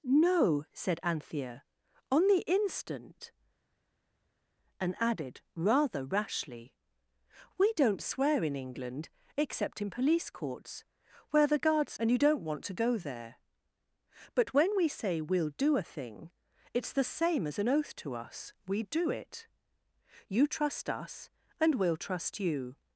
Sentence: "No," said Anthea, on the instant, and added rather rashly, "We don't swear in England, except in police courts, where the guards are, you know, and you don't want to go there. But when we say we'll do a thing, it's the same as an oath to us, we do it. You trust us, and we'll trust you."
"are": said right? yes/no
no